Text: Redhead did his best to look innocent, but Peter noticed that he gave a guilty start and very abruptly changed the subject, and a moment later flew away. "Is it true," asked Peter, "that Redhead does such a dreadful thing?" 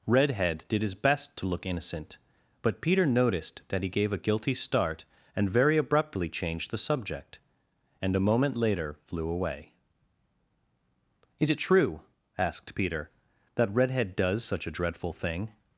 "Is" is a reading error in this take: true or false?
false